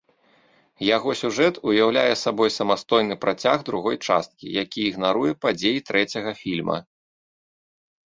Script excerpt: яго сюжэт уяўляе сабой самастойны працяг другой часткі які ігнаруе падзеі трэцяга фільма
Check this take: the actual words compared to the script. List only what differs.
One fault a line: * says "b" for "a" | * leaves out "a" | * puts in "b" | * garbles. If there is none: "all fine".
all fine